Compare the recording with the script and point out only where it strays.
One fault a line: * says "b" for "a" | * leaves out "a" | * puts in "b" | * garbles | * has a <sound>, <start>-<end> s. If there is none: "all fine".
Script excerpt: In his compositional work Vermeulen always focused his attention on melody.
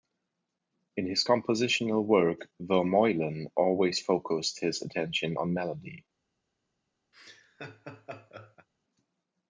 * has a laugh, 7.1-8.7 s